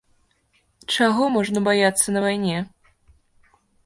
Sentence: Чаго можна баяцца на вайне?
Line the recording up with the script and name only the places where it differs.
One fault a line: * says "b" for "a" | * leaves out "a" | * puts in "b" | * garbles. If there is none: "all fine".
all fine